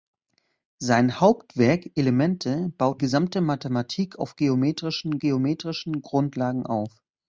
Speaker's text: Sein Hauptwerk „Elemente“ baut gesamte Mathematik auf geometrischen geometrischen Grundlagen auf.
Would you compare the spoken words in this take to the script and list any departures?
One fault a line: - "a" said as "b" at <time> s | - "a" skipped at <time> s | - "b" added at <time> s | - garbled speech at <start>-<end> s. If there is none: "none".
none